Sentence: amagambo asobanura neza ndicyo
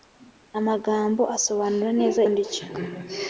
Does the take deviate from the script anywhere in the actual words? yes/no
no